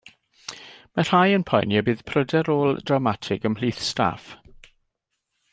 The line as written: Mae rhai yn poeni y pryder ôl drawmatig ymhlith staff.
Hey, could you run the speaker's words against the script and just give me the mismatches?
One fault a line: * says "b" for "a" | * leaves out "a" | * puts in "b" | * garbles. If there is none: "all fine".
* puts in "bydd"